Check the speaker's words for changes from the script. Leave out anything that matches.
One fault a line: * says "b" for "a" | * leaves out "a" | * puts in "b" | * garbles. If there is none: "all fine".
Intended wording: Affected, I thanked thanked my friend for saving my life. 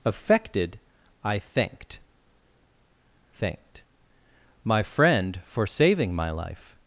all fine